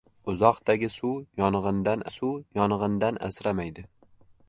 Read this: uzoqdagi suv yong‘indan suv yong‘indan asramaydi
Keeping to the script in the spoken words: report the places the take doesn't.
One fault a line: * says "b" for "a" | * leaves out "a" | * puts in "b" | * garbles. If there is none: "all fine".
all fine